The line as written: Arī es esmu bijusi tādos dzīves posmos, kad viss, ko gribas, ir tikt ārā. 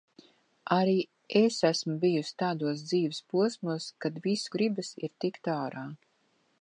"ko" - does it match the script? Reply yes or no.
no